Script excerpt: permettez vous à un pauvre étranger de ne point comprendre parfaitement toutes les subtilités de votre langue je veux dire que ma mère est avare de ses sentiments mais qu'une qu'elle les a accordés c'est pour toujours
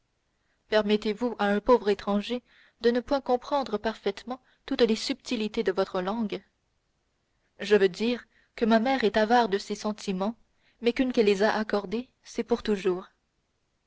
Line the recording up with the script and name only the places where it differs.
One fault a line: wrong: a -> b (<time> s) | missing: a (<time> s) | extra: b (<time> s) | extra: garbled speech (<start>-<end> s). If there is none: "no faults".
no faults